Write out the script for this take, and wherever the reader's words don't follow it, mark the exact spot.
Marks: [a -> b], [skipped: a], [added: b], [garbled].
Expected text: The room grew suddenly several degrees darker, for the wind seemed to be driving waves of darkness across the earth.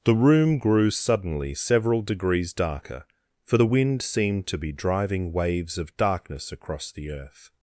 The room grew suddenly several degrees darker, for the wind seemed to be driving waves of darkness across the earth.